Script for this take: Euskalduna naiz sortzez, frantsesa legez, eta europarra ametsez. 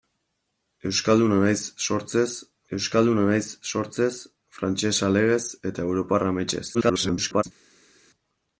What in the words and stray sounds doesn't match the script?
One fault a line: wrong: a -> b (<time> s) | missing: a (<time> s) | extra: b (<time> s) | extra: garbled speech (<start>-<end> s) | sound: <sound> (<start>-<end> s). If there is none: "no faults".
extra: euskalduna naiz sortzez (2.8 s)
extra: garbled speech (6.7-7.4 s)